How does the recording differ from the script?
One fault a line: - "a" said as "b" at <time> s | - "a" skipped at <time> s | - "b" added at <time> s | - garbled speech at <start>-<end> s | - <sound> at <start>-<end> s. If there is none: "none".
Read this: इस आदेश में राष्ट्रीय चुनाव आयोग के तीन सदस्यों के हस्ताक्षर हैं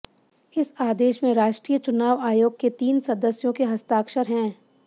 none